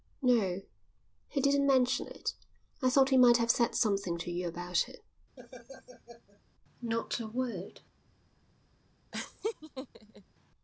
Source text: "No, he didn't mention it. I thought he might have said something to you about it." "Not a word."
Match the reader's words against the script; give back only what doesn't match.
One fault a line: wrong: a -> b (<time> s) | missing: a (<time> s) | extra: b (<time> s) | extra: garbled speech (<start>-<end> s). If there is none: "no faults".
no faults